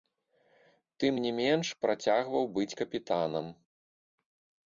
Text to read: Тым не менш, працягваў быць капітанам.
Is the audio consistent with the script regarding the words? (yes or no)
yes